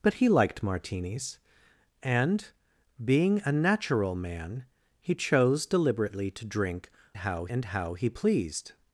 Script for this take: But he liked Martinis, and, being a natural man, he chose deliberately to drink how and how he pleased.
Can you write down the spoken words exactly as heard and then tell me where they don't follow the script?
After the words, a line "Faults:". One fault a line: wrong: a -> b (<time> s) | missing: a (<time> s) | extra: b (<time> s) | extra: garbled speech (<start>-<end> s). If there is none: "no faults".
But he liked Martinis, and, being a natural man, he chose deliberately to drink how and how he pleased.
Faults:
no faults